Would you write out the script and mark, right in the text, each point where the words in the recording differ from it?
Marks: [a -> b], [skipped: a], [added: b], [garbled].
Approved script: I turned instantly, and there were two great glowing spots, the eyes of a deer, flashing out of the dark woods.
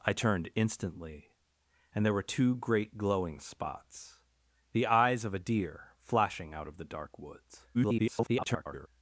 I turned instantly, and there were two great glowing spots, the eyes of a deer, flashing out of the dark woods. [garbled]